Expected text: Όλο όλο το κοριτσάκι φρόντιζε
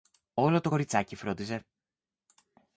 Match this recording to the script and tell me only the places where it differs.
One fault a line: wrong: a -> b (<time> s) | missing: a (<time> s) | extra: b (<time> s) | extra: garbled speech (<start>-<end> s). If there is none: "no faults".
missing: όλο (0.6 s)